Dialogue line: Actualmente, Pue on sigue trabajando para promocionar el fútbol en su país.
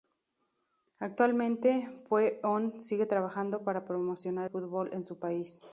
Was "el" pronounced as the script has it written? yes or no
no